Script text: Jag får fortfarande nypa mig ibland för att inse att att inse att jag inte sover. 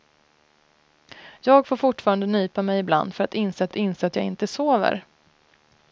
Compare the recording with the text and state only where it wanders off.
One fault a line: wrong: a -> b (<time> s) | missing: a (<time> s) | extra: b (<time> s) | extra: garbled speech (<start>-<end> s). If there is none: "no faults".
no faults